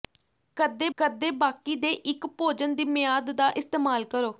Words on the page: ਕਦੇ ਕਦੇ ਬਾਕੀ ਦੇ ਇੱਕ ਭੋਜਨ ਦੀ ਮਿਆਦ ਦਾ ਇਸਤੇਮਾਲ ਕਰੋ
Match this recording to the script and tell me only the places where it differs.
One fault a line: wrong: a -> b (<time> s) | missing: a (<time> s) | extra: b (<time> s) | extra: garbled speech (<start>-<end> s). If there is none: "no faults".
no faults